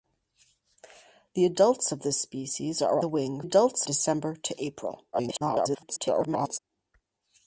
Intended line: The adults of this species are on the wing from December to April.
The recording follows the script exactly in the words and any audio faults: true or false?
false